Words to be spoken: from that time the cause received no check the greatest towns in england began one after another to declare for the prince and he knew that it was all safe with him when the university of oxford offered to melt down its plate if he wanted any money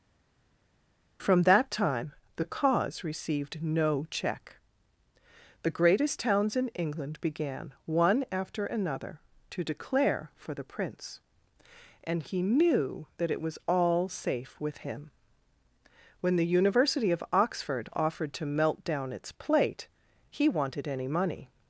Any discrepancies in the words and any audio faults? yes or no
yes